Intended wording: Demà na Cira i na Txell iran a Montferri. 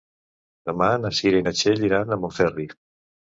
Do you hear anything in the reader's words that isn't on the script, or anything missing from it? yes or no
no